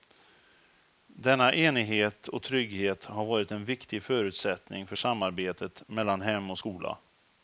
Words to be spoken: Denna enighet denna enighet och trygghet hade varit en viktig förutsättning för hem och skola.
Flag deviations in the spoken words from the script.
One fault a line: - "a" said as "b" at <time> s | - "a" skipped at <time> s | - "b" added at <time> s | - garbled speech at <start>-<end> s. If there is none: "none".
- "denna enighet" skipped at 2.3 s
- "hade" said as "har" at 3.0 s
- "samarbetet mellan" added at 4.9 s